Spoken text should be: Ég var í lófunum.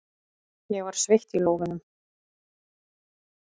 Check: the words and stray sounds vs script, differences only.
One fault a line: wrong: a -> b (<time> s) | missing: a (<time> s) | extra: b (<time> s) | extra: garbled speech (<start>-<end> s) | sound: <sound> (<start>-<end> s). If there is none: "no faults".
extra: sveitt (1.0 s)